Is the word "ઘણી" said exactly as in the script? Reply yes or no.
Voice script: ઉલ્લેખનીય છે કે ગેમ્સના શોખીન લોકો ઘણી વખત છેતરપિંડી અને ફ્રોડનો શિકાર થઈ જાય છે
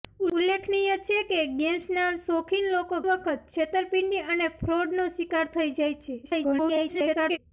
no